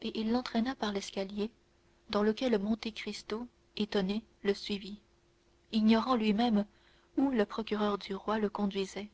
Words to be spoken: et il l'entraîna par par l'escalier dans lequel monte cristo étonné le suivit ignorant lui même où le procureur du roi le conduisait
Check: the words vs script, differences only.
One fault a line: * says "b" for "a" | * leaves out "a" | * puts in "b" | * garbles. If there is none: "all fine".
* leaves out "par"